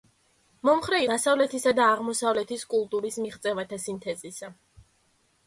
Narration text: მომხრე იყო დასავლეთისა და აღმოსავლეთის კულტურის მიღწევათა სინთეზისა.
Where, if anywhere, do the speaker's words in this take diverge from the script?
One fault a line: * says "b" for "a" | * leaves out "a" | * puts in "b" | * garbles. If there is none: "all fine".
* leaves out "იყო"